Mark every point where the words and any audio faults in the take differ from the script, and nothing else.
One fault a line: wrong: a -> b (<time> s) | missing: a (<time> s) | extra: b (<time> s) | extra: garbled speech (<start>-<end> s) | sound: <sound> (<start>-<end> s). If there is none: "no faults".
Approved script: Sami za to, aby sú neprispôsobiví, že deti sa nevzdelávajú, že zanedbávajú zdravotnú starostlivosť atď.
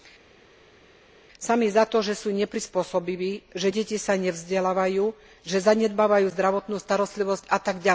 wrong: aby -> že (2.0 s)